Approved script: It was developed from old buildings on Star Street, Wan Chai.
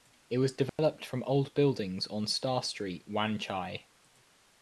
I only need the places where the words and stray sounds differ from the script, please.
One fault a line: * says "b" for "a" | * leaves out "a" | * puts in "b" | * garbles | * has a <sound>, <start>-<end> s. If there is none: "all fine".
* has a dropout, 0.7-0.8 s